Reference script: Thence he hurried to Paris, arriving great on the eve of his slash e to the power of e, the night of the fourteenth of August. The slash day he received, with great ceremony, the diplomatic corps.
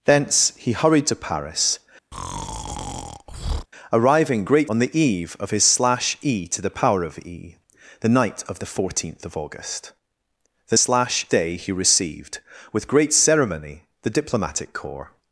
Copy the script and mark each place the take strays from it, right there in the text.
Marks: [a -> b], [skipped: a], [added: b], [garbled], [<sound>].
Thence he hurried to Paris, [breath] arriving great on the eve of his slash e to the power of e, the night of the fourteenth of August. The slash day he received, with great ceremony, the diplomatic corps.